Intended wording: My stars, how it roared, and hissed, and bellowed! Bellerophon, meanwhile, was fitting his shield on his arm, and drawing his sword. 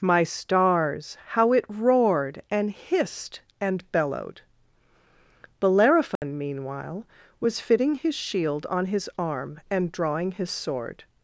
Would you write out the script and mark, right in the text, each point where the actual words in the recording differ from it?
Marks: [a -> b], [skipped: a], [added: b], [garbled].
My stars, how it roared, and hissed, and bellowed! Bellerophon, meanwhile, was fitting his shield on his arm, and drawing his sword.